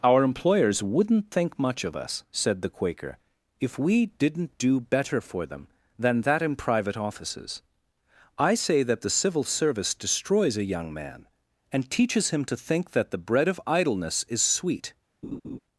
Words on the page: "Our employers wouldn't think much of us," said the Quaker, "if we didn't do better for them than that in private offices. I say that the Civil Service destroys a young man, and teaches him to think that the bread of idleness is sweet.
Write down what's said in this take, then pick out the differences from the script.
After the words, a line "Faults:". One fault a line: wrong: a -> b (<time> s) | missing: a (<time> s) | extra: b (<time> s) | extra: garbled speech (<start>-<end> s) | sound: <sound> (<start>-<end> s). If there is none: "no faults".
"Our employers wouldn't think much of us," said the Quaker, "if we didn't do better for them than that in private offices. I say that the Civil Service destroys a young man, and teaches him to think that the bread of idleness is sweet.
Faults:
sound: laugh (15.2-15.6 s)